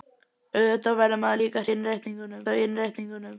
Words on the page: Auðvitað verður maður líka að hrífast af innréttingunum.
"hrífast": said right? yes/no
no